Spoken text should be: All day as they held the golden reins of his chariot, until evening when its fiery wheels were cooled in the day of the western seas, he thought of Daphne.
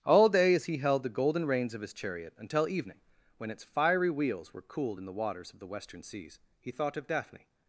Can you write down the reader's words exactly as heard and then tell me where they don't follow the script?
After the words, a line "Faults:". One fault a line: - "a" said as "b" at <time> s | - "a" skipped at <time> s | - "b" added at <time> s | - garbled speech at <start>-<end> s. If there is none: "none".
All day as he held the golden reins of his chariot, until evening when its fiery wheels were cooled in the waters of the western seas, he thought of Daphne.
Faults:
- "they" said as "he" at 0.7 s
- "day" said as "waters" at 5.1 s